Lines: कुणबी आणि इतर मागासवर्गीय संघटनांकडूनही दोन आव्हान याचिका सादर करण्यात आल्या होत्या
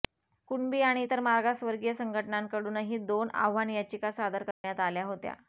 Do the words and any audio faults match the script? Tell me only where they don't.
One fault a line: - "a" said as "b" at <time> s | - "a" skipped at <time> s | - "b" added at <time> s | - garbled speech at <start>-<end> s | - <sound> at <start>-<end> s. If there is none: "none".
- dropout at 4.5-4.6 s